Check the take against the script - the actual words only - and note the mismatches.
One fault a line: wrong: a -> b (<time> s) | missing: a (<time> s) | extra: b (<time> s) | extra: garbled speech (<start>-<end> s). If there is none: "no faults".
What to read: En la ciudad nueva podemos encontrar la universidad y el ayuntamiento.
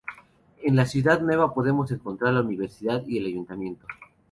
no faults